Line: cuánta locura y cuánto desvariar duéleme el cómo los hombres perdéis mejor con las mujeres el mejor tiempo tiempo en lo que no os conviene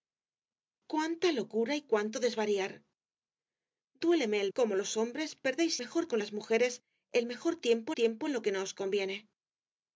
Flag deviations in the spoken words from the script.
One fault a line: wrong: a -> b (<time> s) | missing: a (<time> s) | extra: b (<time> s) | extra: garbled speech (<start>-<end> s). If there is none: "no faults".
no faults